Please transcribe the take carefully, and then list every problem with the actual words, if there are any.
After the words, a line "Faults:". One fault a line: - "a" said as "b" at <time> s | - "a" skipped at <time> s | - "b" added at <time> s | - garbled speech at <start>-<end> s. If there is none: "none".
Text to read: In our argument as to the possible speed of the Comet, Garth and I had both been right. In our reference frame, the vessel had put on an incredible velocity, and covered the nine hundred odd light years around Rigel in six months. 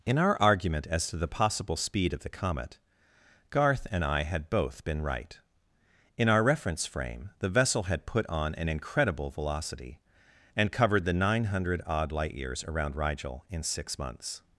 In our argument as to the possible speed of the Comet, Garth and I had both been right. In our reference frame, the vessel had put on an incredible velocity, and covered the nine hundred odd light years around Rigel in six months.
Faults:
none